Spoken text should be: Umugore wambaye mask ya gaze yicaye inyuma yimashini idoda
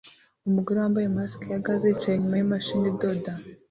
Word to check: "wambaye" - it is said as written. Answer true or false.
true